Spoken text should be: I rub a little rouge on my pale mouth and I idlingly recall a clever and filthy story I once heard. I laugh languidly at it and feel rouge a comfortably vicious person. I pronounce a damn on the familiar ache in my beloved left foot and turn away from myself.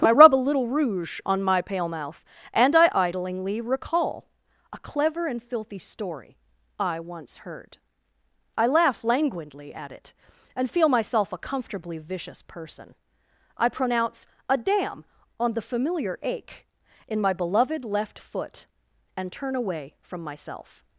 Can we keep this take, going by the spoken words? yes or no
no